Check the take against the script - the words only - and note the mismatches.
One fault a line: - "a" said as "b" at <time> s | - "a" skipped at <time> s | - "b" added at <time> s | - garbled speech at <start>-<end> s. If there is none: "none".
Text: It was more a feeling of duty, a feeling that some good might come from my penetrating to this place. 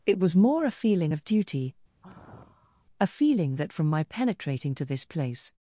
- "some good might come" skipped at 3.7 s